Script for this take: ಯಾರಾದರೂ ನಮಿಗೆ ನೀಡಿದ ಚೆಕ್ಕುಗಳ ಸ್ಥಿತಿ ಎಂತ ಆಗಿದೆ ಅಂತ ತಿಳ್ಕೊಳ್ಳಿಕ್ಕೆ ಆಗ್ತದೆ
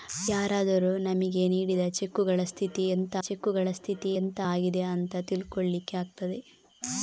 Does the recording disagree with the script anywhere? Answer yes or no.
yes